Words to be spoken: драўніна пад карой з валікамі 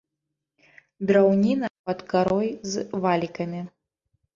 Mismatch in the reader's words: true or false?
false